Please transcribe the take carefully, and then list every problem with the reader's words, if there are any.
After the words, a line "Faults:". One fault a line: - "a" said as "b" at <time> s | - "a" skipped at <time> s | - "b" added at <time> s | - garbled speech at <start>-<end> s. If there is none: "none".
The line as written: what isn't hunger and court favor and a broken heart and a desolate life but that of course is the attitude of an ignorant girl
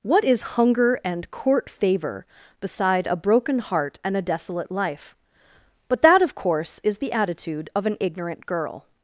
what is hunger and court favor beside a broken heart and a desolate life but that of course is the attitude of an ignorant girl
Faults:
- "isn't" said as "is" at 0.2 s
- "and" said as "beside" at 2.6 s